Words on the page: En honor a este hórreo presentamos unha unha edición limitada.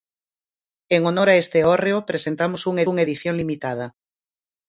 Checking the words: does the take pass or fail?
pass